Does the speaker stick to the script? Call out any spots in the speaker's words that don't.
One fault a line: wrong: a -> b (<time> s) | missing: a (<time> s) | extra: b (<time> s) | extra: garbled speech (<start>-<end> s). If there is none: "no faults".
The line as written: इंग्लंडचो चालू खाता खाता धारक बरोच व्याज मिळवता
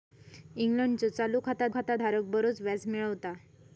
no faults